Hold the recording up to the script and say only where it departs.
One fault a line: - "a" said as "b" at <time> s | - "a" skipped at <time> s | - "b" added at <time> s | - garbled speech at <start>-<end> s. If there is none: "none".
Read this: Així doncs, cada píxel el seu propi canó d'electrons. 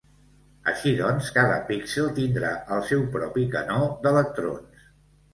- "tindrà" added at 2.2 s